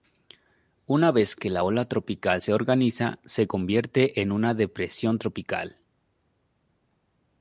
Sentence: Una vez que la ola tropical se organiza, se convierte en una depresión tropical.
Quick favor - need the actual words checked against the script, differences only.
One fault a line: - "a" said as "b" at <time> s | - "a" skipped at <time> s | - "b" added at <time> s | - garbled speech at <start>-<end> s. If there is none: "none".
none